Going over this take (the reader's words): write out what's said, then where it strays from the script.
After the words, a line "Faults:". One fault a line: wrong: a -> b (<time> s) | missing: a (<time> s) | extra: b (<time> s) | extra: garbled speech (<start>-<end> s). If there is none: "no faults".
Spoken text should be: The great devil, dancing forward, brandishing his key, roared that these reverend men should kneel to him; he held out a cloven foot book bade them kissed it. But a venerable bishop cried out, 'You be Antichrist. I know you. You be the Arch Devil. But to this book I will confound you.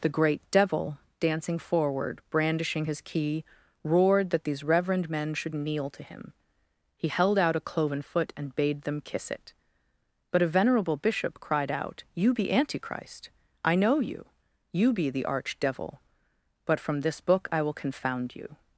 The great devil, dancing forward, brandishing his key, roared that these reverend men should kneel to him; he held out a cloven foot and bade them kiss it. But a venerable bishop cried out, 'You be Antichrist. I know you. You be the Arch Devil. But from this book I will confound you.
Faults:
wrong: book -> and (8.4 s)
wrong: kissed -> kiss (9.0 s)
wrong: to -> from (16.8 s)